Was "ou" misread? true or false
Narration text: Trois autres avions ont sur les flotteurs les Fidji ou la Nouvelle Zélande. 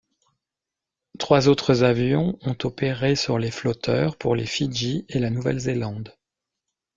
true